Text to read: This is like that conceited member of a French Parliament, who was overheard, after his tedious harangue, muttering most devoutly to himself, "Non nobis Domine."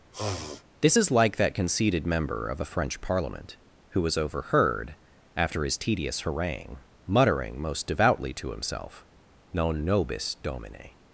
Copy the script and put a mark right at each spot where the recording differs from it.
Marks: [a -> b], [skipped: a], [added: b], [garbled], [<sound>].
[sniff] This is like that conceited member of a French Parliament, who was overheard, after his tedious harangue, muttering most devoutly to himself, "Non nobis Domine."